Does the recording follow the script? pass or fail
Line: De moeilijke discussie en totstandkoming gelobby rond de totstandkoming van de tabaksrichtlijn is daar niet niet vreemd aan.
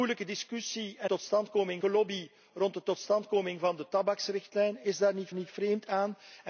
pass